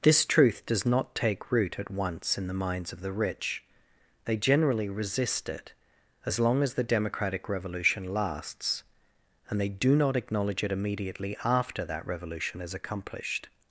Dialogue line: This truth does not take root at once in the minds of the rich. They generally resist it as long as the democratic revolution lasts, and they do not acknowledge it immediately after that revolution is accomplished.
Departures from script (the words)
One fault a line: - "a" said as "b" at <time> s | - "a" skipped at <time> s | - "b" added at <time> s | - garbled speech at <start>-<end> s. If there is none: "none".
none